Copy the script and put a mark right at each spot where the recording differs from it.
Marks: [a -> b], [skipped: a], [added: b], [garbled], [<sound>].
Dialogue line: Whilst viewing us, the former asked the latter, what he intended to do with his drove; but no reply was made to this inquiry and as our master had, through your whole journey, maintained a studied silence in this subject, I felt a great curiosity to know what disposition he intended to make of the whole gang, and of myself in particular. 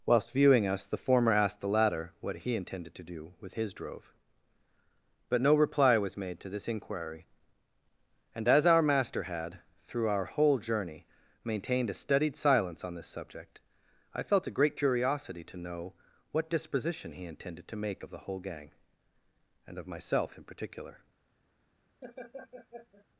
Whilst viewing us, the former asked the latter, what he intended to do with his drove; but no reply was made to this inquiry and as our master had, through [your -> our] whole journey, maintained a studied silence [in -> on] this subject, I felt a great curiosity to know what disposition he intended to make of the whole gang, and of myself in particular. [laugh]